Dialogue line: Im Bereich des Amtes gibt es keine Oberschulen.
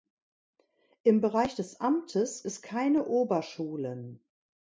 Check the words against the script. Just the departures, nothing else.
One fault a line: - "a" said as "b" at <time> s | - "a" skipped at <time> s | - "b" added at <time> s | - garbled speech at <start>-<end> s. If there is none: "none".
- "gibt" skipped at 2.5 s